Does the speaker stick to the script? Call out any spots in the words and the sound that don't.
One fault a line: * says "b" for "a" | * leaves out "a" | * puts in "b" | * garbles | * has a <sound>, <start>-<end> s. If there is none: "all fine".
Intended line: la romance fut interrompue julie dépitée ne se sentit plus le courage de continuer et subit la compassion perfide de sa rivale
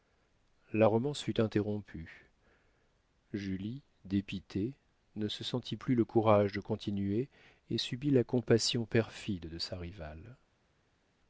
all fine